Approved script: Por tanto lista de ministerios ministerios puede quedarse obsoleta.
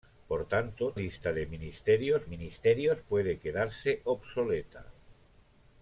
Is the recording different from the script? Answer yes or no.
no